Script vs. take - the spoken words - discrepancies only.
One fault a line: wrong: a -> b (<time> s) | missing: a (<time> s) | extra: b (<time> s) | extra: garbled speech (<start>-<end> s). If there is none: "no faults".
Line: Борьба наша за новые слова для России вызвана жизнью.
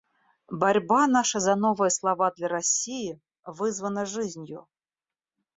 no faults